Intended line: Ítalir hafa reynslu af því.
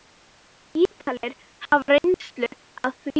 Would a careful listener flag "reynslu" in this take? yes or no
no